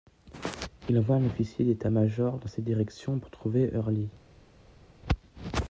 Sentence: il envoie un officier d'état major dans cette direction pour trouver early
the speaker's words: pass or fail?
pass